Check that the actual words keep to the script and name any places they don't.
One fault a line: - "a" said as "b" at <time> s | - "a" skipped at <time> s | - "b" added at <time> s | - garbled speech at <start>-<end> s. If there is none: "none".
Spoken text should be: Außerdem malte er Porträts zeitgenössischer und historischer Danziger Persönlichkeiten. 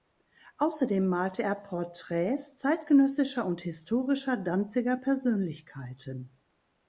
none